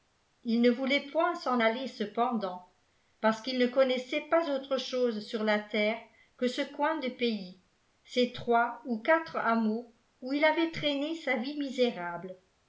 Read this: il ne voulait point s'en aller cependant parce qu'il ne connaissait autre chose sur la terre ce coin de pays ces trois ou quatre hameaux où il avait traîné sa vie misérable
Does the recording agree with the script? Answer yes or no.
no